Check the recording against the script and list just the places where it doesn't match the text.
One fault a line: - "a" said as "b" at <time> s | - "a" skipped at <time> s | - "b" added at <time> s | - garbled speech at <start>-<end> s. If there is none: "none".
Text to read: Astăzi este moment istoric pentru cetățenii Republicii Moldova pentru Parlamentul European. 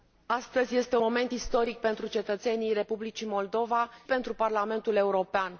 none